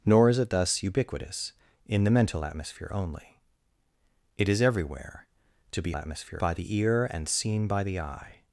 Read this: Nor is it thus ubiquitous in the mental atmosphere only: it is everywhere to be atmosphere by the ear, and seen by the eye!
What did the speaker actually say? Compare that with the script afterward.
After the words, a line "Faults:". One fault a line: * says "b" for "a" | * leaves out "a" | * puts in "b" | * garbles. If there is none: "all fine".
Nor is it thus ubiquitous in the mental atmosphere only: it is everywhere to be atmosphere by the ear, and seen by the eye!
Faults:
all fine